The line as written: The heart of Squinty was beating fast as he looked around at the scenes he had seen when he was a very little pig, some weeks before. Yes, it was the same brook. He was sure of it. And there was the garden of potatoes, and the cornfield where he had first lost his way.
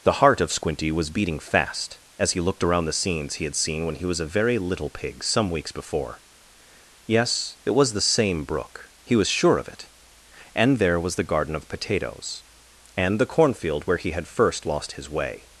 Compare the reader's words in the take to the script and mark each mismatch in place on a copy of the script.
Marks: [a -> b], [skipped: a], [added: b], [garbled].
The heart of Squinty was beating fast as he looked around [skipped: at] the scenes he had seen when he was a very little pig, some weeks before. Yes, it was the same brook. He was sure of it. And there was the garden of potatoes, and the cornfield where he had first lost his way.